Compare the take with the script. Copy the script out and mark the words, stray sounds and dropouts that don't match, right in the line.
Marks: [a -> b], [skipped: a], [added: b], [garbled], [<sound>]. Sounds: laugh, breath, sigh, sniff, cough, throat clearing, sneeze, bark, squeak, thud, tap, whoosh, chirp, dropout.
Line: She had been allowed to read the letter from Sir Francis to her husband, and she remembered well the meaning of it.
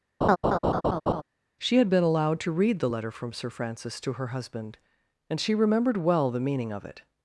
[laugh] She had been allowed to read the letter from Sir Francis to her husband, and she remembered well the meaning of it.